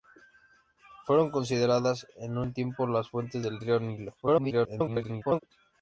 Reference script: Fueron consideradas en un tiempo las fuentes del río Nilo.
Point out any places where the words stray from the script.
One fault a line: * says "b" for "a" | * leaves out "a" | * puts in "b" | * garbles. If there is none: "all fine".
* garbles